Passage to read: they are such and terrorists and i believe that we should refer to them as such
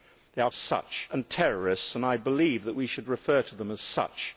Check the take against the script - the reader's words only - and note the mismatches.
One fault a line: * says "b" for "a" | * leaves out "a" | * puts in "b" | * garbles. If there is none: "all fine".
all fine